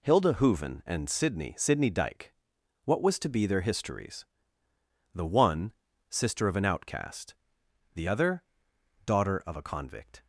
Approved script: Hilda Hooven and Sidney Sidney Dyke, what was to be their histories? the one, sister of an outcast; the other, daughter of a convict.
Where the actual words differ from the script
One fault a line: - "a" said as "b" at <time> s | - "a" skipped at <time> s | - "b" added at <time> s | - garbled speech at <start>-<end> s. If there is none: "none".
none